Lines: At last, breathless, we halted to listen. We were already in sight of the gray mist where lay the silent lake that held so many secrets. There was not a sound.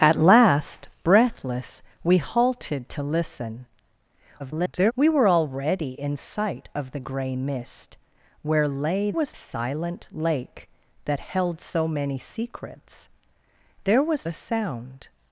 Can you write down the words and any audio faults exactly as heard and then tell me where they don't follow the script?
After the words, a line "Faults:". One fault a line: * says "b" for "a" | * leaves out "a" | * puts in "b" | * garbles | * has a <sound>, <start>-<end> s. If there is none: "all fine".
At last, breathless, we halted to listen. [garbled] We were already in sight of the gray mist where lay was silent lake that held so many secrets. There was a sound.
Faults:
* garbles
* says "was" for "the"
* leaves out "not"